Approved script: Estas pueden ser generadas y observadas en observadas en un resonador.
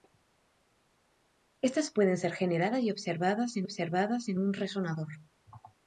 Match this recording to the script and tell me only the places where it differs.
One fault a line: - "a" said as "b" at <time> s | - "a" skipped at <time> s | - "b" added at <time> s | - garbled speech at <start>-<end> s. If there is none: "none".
none